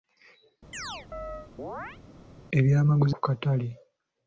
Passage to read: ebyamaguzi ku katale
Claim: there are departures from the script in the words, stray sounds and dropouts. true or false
true